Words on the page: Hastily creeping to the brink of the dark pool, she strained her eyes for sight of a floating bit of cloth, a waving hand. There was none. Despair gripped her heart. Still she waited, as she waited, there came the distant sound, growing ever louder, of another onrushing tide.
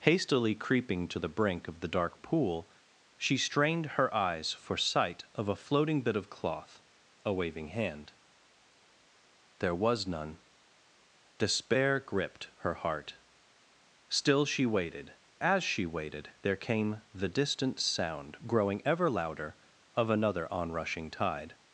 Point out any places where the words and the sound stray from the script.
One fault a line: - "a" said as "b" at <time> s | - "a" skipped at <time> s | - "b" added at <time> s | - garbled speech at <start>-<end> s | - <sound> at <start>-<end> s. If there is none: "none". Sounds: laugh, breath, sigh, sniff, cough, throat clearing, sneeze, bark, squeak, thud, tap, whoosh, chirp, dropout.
none